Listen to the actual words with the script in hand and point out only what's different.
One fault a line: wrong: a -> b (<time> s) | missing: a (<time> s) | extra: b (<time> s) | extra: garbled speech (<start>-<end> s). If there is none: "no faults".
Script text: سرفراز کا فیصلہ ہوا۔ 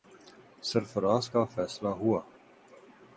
no faults